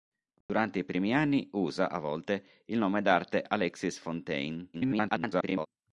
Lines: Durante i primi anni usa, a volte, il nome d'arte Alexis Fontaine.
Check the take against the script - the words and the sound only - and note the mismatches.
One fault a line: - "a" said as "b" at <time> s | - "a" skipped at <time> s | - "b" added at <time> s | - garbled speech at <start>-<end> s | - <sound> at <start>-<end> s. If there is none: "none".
- dropout at 0.4-0.5 s
- garbled speech at 4.7-5.7 s